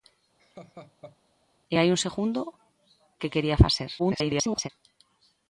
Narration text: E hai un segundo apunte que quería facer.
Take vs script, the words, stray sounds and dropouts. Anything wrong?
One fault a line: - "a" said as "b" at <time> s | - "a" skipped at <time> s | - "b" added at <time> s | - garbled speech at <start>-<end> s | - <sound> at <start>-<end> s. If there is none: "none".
- laugh at 0.4-1.2 s
- "apunte" skipped at 2.4 s
- garbled speech at 4.0-4.7 s